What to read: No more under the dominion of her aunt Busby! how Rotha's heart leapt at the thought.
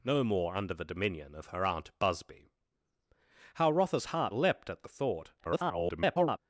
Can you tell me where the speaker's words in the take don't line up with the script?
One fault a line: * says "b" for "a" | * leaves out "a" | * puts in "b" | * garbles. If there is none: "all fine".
* garbles